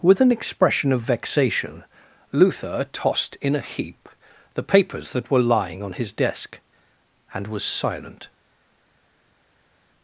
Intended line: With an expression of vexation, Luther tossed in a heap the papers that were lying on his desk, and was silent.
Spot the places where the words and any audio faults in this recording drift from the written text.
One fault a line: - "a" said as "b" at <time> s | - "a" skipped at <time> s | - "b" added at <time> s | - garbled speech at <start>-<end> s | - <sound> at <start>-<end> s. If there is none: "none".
none